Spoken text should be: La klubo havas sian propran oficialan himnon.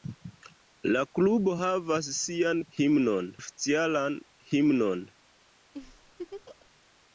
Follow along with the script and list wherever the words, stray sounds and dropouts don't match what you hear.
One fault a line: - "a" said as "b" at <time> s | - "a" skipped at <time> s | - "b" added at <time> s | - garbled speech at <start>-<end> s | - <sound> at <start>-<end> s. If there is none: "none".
- "propran" said as "himnon" at 2.8 s
- laugh at 5.7-6.7 s